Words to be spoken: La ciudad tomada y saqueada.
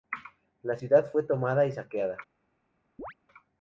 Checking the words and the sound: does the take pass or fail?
fail